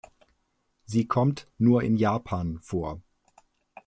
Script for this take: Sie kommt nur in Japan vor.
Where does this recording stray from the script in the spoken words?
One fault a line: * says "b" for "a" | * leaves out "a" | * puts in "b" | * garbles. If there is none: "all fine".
all fine